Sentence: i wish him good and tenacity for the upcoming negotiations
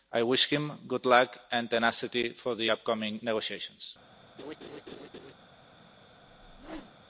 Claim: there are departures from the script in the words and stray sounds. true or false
true